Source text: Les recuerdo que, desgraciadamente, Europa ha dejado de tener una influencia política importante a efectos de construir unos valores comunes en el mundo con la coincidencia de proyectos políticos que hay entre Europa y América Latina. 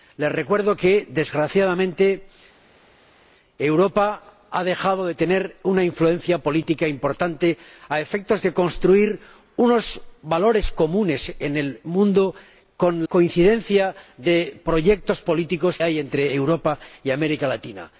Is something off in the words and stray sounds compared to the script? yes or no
yes